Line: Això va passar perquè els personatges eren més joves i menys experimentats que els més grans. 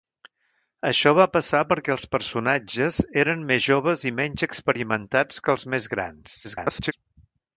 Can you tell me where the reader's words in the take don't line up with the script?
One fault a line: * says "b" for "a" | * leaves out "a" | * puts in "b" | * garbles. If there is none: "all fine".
* garbles